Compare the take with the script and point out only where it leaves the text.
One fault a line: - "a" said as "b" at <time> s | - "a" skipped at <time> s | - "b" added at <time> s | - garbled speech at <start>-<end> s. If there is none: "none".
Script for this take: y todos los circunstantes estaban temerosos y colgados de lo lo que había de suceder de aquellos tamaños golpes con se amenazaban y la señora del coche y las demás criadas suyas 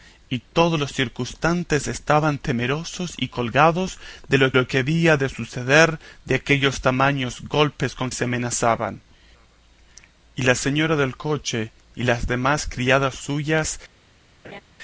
none